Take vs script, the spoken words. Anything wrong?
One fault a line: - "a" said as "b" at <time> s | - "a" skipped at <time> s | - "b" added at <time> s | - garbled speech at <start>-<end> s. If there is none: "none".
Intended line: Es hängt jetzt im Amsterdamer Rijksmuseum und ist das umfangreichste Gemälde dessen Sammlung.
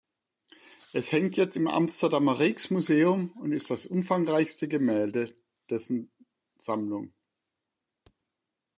none